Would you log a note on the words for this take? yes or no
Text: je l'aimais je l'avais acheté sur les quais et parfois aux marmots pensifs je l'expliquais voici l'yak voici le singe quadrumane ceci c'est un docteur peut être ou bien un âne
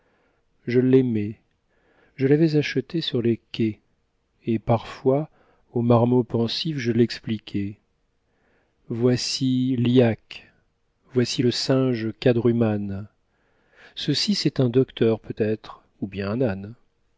no